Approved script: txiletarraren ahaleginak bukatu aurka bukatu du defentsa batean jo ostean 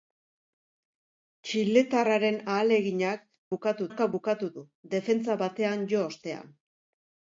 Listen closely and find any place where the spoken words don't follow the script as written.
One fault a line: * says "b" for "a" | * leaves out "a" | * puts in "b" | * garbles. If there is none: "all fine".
all fine